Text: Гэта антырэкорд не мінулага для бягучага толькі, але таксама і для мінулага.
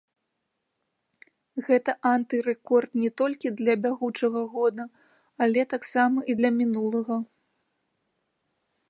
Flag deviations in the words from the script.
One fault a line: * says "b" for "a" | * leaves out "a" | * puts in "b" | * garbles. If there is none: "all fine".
* says "толькі" for "мінулага"
* says "года" for "толькі"